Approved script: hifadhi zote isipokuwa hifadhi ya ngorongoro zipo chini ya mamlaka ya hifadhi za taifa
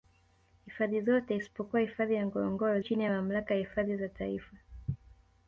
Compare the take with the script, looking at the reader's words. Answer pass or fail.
fail